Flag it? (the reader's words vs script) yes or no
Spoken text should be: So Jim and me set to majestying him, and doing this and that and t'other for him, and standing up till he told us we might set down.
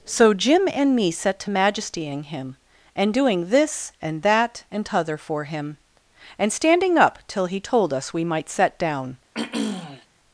no